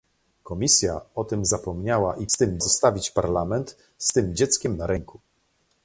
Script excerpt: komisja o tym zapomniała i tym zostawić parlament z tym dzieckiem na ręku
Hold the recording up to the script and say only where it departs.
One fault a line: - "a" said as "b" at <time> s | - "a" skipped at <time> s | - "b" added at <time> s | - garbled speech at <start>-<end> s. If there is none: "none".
none